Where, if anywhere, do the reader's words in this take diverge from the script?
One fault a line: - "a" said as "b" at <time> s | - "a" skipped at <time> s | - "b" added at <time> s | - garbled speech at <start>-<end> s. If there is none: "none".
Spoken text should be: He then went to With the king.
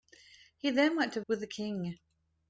none